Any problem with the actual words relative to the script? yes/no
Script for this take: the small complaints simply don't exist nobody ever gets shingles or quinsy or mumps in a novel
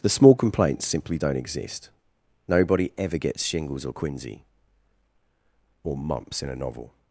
no